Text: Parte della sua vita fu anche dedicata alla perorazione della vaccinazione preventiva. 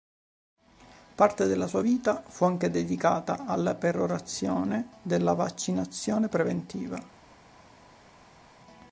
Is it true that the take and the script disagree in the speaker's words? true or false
false